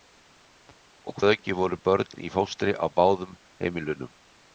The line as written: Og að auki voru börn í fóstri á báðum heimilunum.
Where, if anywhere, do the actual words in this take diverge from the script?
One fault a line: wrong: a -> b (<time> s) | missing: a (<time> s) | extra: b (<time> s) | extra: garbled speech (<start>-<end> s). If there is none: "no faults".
no faults